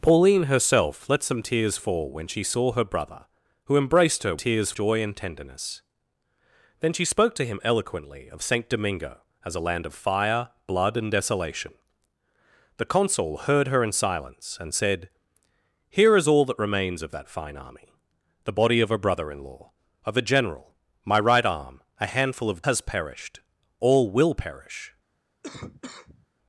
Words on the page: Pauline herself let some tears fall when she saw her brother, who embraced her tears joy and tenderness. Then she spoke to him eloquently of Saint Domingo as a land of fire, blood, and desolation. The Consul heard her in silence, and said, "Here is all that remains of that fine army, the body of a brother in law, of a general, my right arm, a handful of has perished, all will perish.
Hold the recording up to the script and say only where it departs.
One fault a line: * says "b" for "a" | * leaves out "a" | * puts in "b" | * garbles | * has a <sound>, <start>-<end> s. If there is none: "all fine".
* has a cough, 25.4-26.3 s